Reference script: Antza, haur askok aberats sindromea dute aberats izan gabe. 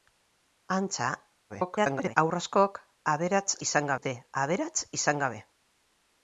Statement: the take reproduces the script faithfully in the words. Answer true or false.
false